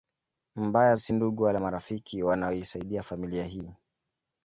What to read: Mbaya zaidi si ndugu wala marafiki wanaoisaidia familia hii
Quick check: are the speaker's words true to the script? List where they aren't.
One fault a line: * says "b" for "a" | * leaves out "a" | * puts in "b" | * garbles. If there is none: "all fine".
* leaves out "zaidi"